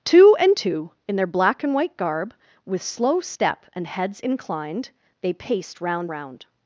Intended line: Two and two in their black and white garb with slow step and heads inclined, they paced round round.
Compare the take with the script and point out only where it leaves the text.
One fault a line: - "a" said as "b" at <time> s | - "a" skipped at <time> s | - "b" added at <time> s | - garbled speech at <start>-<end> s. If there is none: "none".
none